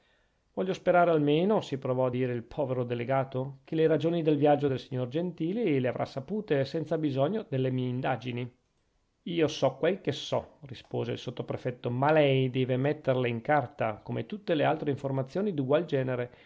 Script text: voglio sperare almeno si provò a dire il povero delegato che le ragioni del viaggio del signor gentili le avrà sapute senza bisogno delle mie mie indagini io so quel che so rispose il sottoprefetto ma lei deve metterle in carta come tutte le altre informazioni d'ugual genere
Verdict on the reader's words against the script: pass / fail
fail